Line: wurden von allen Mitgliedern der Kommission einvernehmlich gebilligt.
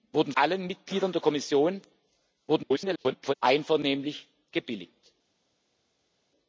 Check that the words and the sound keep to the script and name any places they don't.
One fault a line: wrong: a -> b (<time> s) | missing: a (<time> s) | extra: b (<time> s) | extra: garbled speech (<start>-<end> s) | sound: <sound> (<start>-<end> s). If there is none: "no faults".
missing: von (0.3 s)
extra: garbled speech (2.5-3.3 s)